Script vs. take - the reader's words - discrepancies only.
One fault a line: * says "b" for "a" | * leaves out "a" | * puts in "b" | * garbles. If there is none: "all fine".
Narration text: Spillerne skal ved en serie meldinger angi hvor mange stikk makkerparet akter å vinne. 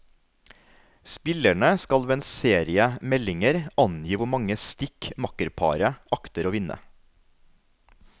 all fine